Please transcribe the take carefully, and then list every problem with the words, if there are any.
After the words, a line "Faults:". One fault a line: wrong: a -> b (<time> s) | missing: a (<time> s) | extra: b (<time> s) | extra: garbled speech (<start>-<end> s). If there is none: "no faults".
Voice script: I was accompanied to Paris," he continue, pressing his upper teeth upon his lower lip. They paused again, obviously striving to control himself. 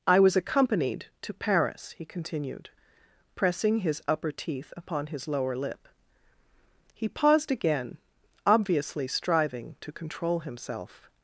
I was accompanied to Paris," he continued, pressing his upper teeth upon his lower lip. He paused again, obviously striving to control himself.
Faults:
wrong: continue -> continued (2.0 s)
wrong: They -> He (6.9 s)